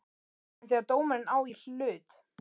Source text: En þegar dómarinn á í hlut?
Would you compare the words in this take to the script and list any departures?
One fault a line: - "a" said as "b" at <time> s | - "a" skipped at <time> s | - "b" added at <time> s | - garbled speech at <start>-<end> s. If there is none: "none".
none